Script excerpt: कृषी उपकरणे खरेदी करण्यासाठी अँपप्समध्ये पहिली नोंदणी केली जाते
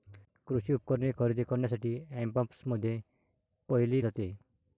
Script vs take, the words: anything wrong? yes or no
yes